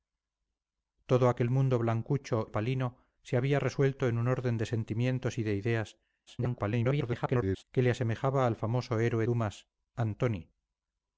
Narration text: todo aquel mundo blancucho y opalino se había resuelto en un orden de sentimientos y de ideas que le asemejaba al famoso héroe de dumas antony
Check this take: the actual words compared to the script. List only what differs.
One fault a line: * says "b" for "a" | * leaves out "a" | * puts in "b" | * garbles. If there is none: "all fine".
* leaves out "y"
* garbles
* leaves out "de"